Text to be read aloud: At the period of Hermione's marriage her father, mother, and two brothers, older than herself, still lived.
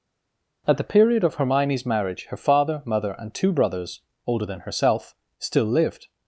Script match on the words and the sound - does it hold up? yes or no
yes